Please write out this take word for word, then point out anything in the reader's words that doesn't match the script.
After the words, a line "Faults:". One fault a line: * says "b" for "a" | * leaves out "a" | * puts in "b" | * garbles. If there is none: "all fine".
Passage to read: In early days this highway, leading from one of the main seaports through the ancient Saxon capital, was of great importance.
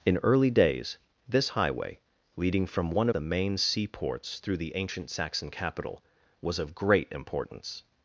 In early days this highway, leading from one the main seaports through the ancient Saxon capital, was of great importance.
Faults:
* leaves out "of"